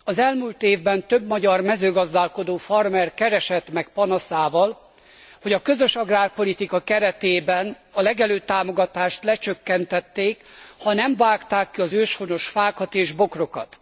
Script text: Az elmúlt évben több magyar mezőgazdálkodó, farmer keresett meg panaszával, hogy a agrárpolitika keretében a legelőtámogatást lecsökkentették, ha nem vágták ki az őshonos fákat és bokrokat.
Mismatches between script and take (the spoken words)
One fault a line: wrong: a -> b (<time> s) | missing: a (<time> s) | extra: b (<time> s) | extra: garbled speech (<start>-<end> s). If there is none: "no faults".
extra: közös (5.6 s)